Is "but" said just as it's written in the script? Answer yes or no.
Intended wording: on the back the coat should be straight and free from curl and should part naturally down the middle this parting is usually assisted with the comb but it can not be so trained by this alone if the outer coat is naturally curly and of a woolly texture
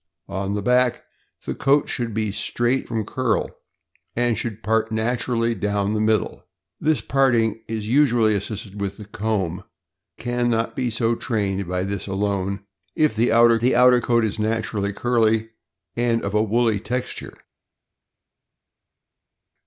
no